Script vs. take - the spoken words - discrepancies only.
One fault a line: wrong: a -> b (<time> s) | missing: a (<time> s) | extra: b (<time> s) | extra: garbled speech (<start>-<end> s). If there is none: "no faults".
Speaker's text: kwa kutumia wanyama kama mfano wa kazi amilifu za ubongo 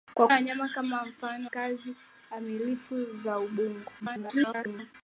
missing: kutumia (0.3 s)
missing: wa (1.5 s)
extra: garbled speech (4.0-4.9 s)